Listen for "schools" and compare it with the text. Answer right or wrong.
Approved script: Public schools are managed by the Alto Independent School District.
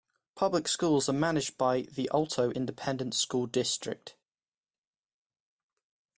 right